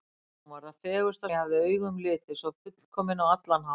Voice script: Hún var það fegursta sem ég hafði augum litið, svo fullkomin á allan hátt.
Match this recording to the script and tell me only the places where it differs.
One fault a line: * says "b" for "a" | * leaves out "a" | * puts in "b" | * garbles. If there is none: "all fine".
* leaves out "sem"